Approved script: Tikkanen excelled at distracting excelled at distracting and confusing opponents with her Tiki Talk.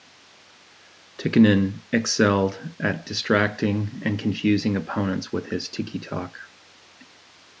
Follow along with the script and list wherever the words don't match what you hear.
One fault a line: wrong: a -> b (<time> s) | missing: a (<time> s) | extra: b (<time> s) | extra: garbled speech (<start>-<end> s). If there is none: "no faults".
missing: excelled at distracting (4.0 s)
wrong: her -> his (5.5 s)